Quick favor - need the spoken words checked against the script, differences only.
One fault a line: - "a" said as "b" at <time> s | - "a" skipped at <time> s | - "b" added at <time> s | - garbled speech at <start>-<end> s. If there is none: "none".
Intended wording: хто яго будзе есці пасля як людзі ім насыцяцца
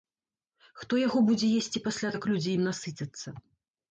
none